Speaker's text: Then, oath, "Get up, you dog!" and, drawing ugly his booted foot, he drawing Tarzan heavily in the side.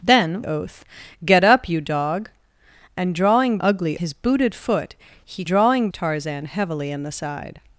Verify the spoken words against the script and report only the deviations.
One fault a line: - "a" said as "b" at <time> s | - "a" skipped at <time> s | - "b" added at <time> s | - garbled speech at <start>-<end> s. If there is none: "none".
none